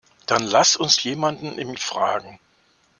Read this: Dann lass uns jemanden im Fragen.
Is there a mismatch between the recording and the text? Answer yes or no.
no